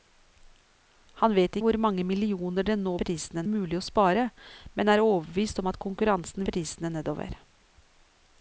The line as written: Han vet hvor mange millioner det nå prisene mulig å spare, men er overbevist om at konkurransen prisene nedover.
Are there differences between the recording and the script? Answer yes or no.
no